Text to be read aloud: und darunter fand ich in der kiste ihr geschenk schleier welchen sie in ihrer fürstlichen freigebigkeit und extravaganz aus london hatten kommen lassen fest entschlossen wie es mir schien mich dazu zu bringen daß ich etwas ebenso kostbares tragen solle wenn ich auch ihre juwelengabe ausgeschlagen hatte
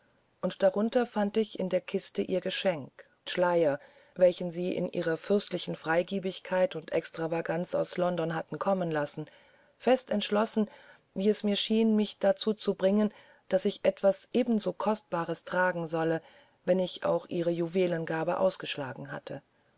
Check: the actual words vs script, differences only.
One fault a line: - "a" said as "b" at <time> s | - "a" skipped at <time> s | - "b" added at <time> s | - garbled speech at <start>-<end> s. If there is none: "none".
none